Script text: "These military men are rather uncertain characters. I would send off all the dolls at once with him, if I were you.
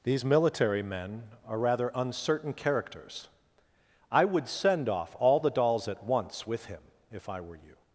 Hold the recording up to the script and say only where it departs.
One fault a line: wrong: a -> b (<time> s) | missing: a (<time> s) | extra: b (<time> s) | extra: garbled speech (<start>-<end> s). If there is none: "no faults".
no faults